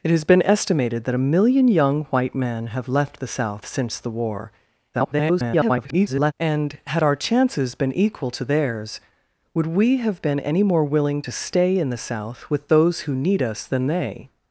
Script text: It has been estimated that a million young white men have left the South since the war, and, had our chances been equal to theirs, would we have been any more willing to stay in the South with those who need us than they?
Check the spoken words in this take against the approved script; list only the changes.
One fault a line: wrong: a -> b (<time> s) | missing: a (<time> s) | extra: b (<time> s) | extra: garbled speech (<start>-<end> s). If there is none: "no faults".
extra: garbled speech (4.9-6.3 s)